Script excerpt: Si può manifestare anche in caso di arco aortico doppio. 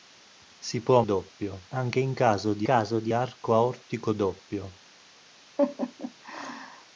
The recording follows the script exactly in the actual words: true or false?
false